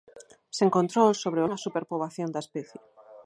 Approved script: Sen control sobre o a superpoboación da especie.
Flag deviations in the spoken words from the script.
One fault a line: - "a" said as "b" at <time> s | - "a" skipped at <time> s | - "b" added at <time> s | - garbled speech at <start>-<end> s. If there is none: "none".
none